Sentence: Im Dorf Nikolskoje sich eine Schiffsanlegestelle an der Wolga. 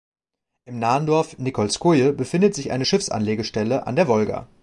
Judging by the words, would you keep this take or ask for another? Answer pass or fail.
fail